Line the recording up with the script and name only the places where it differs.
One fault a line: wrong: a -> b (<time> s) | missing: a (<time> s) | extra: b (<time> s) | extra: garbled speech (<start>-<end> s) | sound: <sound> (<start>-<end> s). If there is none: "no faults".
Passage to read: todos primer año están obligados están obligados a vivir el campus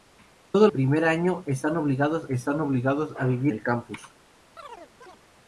sound: chirp (4.6-5.2 s)